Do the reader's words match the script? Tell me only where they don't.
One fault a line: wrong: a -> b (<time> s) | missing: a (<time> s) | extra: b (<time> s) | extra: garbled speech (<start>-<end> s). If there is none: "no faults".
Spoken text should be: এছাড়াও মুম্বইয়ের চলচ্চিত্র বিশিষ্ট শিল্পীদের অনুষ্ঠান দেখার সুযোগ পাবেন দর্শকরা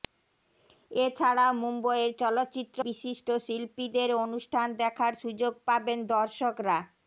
no faults